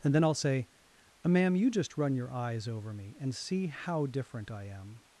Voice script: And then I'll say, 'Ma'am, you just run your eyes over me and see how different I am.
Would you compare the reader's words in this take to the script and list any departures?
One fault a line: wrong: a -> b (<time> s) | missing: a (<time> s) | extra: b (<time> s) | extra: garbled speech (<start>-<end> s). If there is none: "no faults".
no faults